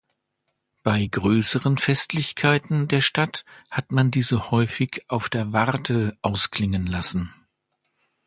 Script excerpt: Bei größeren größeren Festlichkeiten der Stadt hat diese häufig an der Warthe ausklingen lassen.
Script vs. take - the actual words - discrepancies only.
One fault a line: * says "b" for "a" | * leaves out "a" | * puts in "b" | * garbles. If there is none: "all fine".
* leaves out "größeren"
* puts in "man"
* says "auf" for "an"